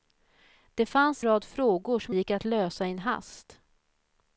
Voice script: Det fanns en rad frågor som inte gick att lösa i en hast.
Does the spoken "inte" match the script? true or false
false